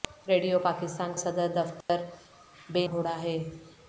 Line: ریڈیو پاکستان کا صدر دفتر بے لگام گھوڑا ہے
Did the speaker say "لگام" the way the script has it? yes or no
no